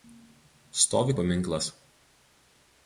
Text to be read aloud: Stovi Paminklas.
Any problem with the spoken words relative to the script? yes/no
no